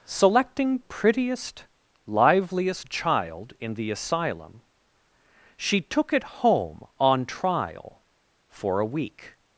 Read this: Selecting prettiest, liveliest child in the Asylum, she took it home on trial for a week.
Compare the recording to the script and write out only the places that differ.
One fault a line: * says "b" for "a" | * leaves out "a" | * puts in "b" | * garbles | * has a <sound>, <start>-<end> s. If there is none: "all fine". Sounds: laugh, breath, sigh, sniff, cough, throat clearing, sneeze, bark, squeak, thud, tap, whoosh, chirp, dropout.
all fine